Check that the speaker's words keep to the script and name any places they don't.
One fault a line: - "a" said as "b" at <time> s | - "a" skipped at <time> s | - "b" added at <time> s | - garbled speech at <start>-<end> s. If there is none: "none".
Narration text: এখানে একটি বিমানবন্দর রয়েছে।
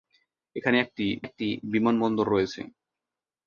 - "একটি" added at 1.2 s